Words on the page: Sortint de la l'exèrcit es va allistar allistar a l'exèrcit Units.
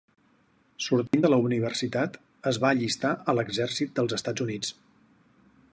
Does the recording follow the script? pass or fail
fail